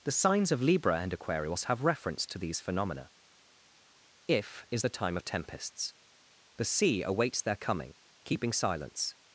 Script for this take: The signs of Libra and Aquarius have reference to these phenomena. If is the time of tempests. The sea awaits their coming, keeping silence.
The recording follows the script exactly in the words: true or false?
true